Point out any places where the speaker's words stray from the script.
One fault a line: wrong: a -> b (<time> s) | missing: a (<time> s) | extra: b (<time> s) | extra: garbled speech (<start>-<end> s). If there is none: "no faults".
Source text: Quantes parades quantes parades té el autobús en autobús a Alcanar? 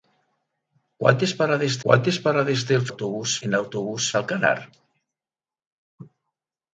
no faults